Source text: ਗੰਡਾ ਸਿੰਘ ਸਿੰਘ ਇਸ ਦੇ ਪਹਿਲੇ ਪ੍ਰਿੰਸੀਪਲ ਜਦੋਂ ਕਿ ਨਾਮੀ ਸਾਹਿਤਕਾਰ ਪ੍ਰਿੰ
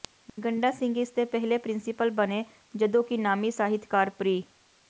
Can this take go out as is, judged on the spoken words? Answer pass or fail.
fail